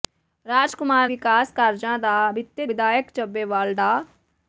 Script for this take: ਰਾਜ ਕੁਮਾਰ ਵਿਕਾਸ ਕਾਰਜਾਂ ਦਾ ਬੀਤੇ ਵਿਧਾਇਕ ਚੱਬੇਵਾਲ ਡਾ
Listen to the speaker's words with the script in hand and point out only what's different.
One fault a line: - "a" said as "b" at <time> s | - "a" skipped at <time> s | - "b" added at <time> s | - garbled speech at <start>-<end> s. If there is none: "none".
none